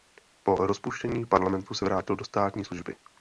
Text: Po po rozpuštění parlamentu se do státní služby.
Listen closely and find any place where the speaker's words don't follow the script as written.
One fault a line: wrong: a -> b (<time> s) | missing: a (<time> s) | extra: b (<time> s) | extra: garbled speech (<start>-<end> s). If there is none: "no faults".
missing: po (0.6 s)
extra: vrátil (1.9 s)